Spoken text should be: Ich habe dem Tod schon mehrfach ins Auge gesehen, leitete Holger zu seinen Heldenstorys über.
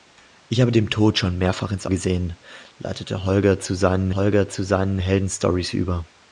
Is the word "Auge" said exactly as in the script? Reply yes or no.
no